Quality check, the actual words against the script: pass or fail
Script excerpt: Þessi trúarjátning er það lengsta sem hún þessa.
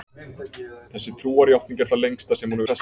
pass